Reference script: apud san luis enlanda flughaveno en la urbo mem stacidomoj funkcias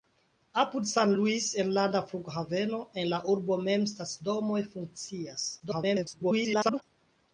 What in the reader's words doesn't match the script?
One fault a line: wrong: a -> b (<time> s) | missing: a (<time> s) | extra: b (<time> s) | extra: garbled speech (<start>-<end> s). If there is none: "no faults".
extra: garbled speech (5.6-6.8 s)